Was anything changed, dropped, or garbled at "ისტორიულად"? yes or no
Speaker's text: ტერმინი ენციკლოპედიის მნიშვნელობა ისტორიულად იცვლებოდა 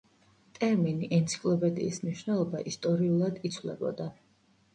no